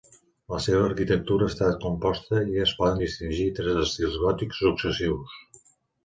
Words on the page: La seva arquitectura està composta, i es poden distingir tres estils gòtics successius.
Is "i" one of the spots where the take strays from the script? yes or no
no